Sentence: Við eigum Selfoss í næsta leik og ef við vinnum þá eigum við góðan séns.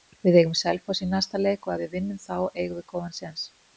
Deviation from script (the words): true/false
false